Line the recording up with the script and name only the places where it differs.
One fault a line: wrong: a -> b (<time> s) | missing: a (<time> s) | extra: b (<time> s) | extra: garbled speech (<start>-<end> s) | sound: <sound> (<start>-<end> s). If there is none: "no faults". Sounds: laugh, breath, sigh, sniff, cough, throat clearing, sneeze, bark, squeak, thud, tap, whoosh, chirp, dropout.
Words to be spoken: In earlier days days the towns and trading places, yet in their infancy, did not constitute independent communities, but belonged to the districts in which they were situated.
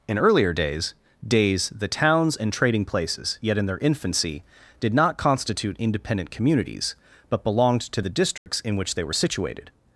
sound: dropout (8.4-8.5 s)